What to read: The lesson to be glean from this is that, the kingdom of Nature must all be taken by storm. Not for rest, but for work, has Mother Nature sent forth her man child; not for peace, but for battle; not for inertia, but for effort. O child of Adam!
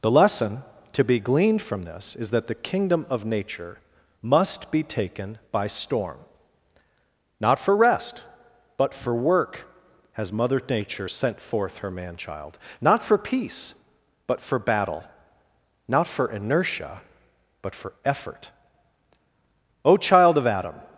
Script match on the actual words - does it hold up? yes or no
no